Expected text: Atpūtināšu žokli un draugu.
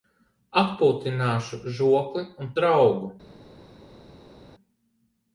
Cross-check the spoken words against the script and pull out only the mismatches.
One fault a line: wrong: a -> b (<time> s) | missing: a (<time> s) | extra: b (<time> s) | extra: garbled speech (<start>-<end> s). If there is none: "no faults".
no faults